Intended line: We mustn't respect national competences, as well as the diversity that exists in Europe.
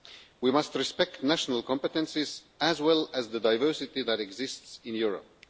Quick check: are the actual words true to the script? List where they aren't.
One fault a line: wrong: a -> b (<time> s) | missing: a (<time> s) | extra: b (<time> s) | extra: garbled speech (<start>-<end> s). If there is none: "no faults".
wrong: mustn't -> must (0.5 s)